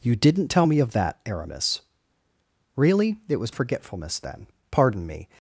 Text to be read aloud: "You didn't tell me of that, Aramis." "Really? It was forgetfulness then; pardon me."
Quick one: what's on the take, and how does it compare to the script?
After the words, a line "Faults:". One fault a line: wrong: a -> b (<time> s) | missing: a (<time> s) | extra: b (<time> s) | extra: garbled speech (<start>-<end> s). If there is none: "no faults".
"You didn't tell me of that, Aramis." "Really? It was forgetfulness then; pardon me."
Faults:
no faults